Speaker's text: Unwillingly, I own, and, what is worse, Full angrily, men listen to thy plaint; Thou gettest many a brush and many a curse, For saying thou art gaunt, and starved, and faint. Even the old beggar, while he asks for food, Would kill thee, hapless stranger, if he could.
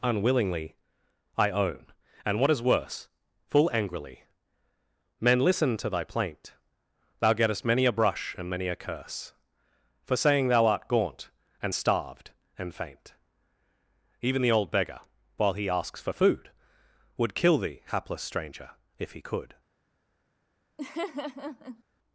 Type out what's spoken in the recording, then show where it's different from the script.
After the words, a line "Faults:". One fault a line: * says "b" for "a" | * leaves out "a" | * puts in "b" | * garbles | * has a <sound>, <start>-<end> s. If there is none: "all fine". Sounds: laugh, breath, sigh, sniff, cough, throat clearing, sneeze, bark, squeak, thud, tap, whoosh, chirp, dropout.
Unwillingly, I own, and, what is worse, Full angrily, men listen to thy plaint; Thou gettest many a brush and many a curse, For saying thou art gaunt, and starved, and faint. Even the old beggar, while he asks for food, Would kill thee, hapless stranger, if he could.
Faults:
* has a laugh, 20.8-21.8 s